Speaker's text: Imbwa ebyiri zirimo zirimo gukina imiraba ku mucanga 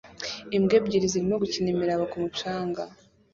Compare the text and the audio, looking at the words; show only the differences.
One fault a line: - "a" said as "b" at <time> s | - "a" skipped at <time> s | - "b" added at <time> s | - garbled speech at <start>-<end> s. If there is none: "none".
- "zirimo" skipped at 1.4 s